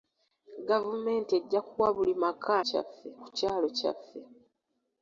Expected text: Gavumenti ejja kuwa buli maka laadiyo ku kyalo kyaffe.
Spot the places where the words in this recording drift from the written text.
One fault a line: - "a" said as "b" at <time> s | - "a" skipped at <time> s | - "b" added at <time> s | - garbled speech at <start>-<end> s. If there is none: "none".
- "laadiyo" said as "kyaffe" at 2.7 s